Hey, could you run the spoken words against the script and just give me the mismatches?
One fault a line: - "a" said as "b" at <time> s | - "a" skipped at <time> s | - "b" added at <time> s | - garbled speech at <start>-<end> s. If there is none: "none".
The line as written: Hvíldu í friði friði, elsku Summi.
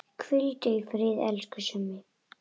- "friði" skipped at 1.1 s